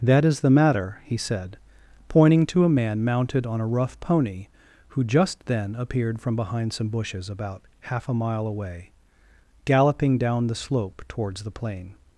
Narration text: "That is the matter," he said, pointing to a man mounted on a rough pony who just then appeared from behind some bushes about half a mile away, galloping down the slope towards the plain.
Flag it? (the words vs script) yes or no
no